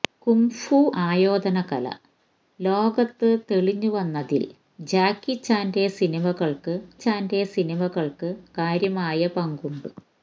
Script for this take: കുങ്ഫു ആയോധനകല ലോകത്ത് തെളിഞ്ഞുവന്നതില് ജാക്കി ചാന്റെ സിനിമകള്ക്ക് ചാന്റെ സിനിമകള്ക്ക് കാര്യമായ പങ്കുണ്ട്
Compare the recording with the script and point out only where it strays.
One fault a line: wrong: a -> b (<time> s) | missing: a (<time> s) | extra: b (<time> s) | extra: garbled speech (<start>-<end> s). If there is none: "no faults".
no faults